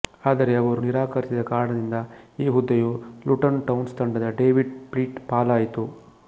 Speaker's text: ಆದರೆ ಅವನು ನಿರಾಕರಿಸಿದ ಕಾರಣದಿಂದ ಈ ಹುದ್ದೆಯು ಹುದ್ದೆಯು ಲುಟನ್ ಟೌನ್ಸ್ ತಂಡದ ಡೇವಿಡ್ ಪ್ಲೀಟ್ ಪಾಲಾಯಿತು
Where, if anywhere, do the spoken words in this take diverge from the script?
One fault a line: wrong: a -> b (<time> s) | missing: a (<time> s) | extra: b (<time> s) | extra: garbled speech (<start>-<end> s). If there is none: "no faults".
wrong: ಅವನು -> ಅವರು (0.6 s)
missing: ಹುದ್ದೆಯು (2.9 s)